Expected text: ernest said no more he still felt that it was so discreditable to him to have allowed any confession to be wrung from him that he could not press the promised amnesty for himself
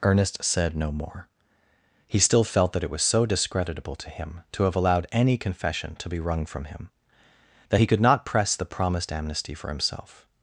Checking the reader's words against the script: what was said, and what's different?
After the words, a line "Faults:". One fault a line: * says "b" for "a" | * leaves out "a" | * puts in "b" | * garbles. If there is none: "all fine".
ernest said no more he still felt that it was so discreditable to him to have allowed any confession to be wrung from him that he could not press the promised amnesty for himself
Faults:
all fine